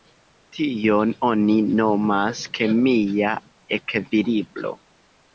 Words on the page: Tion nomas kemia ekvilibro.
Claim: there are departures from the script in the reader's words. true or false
true